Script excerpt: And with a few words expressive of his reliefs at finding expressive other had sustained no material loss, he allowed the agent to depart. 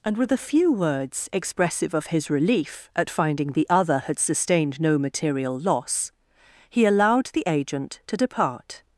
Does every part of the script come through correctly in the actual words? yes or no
no